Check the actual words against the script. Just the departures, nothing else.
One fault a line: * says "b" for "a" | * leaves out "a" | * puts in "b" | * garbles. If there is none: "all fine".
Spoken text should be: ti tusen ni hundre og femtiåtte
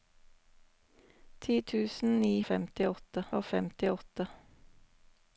* says "femtiåtte" for "hundre"